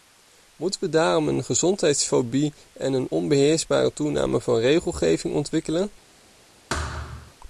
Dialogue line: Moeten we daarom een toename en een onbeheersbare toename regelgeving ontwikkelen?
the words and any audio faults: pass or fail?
fail